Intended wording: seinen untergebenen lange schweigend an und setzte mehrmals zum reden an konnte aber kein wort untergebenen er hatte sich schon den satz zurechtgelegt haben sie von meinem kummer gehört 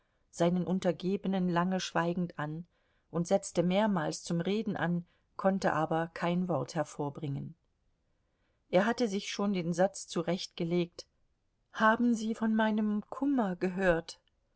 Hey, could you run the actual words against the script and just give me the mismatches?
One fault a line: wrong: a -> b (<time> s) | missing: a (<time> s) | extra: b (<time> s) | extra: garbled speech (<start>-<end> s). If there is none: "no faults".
wrong: untergebenen -> hervorbringen (6.7 s)